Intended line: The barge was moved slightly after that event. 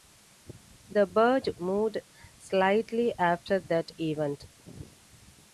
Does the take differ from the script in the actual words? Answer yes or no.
yes